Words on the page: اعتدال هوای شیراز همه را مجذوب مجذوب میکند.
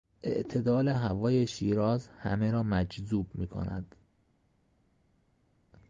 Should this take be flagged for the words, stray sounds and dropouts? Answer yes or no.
yes